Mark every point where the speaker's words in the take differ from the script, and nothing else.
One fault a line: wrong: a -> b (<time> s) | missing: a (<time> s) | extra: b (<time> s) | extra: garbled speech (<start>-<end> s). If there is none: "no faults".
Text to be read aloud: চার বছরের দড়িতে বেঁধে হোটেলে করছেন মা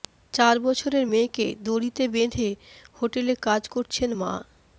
extra: মেয়েকে (1.0 s)
extra: কাজ (3.5 s)